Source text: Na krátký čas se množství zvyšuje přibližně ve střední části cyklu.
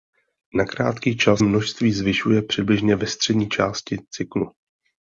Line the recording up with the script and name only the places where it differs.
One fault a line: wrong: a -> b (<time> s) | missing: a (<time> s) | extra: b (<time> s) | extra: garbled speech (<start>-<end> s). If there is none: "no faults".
missing: se (1.4 s)